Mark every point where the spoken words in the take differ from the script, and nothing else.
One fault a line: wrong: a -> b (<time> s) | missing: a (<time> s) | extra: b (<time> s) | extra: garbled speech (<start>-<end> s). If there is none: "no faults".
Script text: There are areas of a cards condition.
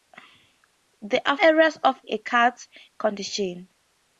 no faults